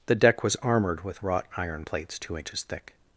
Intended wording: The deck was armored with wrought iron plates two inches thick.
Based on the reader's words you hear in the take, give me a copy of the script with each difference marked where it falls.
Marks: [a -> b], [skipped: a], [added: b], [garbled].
The deck was armored with wrought iron plates two inches thick.